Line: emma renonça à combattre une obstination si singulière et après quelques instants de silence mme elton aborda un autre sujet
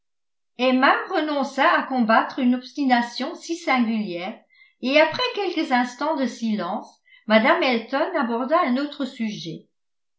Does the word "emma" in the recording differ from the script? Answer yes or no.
no